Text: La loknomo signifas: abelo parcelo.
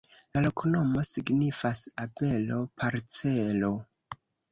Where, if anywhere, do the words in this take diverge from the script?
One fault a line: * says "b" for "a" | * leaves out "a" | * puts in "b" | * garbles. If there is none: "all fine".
all fine